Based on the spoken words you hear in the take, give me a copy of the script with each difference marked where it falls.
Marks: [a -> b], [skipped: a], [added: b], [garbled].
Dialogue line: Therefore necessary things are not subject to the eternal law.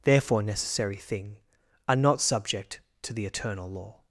Therefore necessary [things -> thing] are not subject to the eternal law.